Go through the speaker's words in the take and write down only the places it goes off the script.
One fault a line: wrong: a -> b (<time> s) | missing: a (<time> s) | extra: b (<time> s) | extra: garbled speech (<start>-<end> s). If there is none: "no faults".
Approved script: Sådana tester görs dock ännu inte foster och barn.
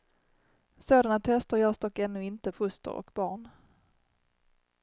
no faults